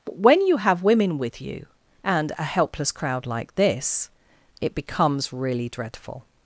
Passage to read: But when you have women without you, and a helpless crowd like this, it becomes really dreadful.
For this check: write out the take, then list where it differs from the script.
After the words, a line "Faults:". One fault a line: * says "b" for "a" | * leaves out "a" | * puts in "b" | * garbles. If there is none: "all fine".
But when you have women with you, and a helpless crowd like this, it becomes really dreadful.
Faults:
* says "with" for "without"